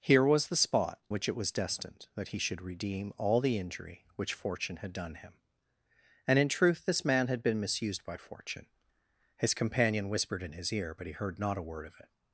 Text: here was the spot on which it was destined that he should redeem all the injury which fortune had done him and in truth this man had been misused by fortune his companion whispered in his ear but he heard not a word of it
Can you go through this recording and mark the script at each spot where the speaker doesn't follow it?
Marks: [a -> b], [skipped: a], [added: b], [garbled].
here was the spot [skipped: on] which it was destined that he should redeem all the injury which fortune had done him and in truth this man had been misused by fortune his companion whispered in his ear but he heard not a word of it